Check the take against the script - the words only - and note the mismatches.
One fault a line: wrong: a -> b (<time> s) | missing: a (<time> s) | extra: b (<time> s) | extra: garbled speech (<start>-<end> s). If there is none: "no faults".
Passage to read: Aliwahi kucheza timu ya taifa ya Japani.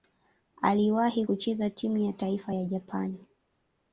no faults